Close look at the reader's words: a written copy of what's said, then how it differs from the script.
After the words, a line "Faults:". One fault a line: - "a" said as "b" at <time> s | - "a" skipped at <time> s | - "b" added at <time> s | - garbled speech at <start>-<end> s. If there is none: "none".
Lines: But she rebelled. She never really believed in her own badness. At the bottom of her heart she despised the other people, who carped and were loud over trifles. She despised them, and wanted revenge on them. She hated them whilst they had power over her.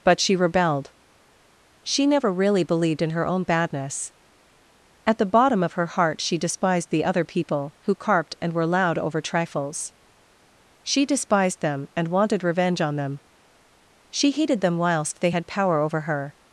But she rebelled. She never really believed in her own badness. At the bottom of her heart she despised the other people, who carped and were loud over trifles. She despised them, and wanted revenge on them. She hated them whilst they had power over her.
Faults:
none